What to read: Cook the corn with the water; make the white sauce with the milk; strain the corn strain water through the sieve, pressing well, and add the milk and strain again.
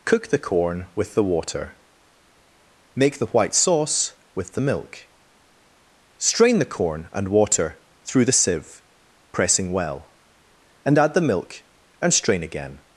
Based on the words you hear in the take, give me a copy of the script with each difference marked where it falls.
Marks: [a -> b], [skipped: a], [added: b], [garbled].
Cook the corn with the water; make the white sauce with the milk; strain the corn [strain -> and] water through the sieve, pressing well, and add the milk and strain again.